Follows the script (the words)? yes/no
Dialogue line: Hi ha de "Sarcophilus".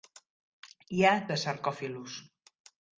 yes